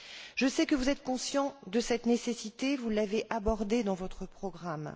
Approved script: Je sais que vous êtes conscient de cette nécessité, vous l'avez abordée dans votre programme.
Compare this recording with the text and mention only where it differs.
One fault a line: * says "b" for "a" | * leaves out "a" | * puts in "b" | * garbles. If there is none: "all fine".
all fine